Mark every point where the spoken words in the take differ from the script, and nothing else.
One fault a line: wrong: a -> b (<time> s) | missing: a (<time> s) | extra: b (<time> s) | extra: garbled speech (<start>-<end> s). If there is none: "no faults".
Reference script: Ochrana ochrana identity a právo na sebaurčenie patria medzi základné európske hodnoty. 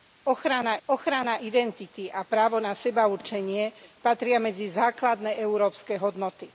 no faults